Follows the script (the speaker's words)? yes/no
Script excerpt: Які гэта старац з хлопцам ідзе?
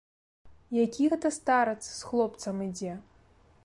yes